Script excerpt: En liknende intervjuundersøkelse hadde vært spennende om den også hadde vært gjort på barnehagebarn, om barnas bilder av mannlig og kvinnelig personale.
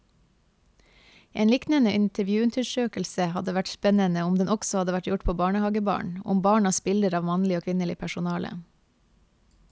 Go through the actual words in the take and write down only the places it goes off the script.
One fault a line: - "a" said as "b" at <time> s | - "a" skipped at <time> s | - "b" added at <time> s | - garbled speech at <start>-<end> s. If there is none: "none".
none